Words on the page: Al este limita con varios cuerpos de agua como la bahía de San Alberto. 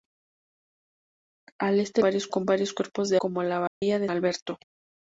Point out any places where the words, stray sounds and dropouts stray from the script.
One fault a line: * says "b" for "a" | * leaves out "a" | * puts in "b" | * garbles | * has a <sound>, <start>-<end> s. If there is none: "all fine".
* says "varios" for "limita"
* leaves out "agua"
* has a dropout, 3.7-3.8 s
* leaves out "San"